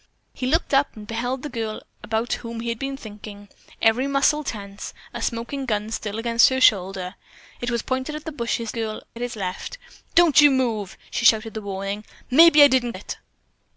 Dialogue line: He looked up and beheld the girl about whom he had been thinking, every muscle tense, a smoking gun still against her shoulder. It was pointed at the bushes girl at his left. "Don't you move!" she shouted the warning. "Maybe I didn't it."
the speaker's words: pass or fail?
pass